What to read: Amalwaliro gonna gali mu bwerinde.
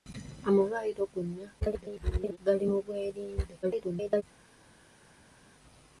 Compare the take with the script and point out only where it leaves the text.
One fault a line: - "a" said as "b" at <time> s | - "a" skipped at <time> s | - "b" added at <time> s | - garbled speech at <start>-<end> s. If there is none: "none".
- garbled speech at 1.6-2.4 s
- garbled speech at 3.6-4.2 s